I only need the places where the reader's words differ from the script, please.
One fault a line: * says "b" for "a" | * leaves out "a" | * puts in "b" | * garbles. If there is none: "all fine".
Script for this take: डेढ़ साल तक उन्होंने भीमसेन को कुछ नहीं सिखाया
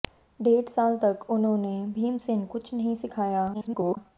* leaves out "को"
* garbles